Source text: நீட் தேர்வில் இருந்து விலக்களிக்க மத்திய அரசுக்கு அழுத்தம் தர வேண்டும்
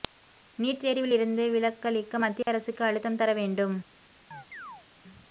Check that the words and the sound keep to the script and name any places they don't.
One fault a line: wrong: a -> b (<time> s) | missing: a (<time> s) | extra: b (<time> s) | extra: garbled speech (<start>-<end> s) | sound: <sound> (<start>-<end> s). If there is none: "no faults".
sound: dropout (2.4-2.5 s)
sound: chirp (4.3-4.9 s)